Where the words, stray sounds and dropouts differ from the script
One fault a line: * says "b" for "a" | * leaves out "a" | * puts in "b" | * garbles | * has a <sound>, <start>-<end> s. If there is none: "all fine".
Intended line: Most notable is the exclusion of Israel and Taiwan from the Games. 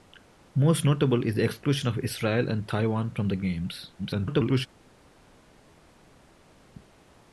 * garbles